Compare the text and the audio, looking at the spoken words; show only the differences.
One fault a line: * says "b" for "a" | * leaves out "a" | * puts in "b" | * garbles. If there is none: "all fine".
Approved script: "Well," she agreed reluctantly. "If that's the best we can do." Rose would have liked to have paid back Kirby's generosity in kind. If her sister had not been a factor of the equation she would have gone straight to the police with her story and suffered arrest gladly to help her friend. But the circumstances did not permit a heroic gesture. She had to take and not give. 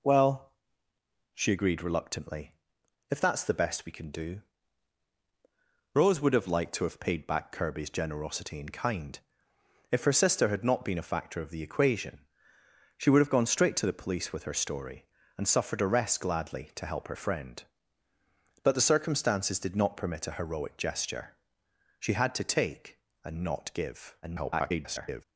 * garbles